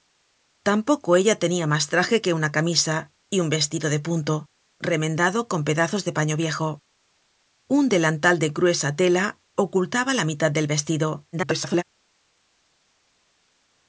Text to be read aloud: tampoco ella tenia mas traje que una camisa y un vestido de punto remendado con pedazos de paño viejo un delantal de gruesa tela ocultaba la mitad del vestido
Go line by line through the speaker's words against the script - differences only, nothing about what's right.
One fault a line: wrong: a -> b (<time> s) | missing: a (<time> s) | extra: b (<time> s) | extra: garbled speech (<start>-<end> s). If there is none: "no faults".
extra: garbled speech (11.3-11.8 s)